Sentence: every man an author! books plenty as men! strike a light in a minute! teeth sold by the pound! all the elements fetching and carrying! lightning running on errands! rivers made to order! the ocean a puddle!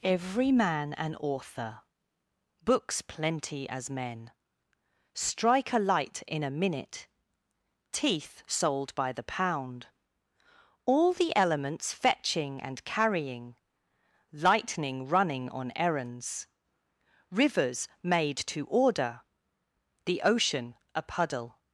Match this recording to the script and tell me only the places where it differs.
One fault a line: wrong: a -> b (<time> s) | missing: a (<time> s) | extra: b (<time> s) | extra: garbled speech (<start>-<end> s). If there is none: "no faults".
no faults